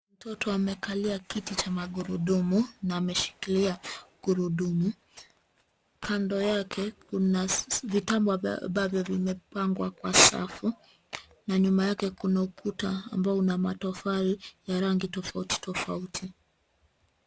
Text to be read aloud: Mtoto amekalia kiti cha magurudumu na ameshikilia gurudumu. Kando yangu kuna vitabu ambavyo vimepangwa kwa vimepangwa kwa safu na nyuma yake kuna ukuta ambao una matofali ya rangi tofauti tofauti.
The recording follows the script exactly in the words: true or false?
false